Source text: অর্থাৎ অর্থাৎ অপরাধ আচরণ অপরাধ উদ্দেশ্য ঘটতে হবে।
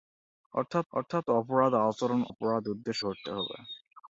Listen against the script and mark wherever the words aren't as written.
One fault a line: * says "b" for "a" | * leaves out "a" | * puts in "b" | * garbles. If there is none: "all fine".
all fine